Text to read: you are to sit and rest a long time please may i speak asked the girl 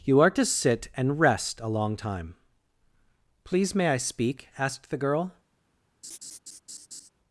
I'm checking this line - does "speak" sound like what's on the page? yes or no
yes